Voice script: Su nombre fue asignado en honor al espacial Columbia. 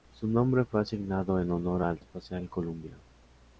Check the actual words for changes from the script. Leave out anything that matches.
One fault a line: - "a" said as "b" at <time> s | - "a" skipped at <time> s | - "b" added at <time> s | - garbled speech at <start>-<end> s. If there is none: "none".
none